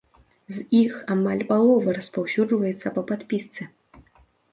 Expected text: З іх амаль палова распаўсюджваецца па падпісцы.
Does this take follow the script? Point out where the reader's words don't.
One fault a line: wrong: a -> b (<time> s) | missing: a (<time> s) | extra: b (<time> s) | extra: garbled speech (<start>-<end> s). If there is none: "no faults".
no faults